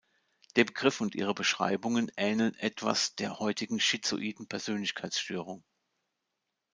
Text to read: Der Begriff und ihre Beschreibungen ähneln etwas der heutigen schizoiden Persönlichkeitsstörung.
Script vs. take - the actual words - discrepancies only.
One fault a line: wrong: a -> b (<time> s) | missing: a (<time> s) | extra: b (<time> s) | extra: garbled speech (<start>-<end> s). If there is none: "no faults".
no faults